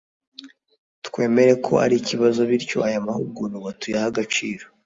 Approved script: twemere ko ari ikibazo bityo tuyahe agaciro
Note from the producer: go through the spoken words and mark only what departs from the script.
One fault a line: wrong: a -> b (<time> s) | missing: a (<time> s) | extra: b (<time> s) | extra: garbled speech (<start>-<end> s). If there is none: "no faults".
extra: aya mahugurwa (2.9 s)